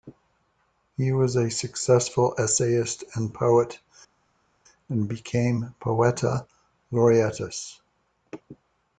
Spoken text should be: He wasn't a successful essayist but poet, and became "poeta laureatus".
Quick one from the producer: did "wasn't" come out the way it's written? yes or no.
no